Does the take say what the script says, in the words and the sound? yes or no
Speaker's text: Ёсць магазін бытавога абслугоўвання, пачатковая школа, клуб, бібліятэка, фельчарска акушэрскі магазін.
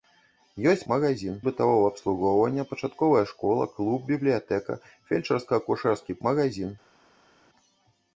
yes